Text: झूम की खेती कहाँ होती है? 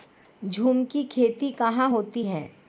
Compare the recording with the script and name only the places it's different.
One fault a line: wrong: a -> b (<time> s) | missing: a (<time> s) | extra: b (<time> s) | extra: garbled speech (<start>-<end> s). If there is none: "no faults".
no faults